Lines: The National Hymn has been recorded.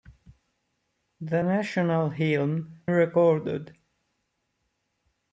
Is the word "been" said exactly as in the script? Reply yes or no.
no